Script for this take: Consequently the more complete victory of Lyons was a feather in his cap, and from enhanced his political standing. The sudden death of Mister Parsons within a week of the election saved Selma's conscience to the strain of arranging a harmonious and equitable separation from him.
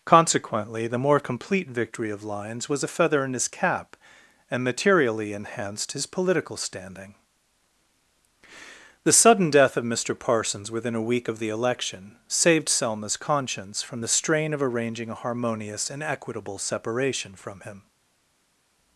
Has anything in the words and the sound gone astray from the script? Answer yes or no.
yes